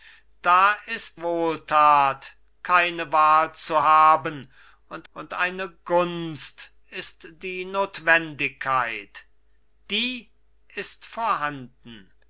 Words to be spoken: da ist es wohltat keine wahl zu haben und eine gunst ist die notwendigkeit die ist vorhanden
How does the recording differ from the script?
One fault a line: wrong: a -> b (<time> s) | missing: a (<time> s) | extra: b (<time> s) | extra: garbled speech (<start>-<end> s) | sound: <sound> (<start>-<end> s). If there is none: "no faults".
missing: es (1.2 s)
extra: und (5.1 s)